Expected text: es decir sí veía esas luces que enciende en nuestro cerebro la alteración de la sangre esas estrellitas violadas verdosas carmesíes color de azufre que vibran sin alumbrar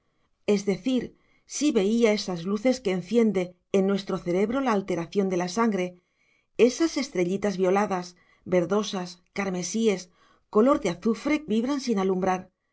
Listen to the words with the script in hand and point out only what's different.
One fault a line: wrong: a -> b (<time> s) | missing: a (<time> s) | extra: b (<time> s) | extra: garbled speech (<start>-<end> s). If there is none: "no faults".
missing: que (11.4 s)